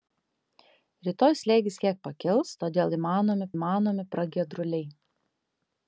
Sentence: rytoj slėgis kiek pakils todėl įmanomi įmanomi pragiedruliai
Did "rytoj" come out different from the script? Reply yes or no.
no